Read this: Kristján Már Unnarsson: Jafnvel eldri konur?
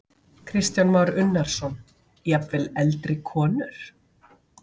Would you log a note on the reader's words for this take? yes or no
no